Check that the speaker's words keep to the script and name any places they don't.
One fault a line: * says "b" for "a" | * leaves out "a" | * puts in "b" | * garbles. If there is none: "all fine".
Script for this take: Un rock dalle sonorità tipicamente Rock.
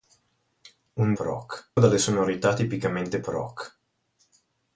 all fine